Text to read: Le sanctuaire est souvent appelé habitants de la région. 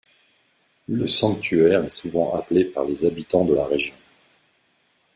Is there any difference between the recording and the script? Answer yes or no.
yes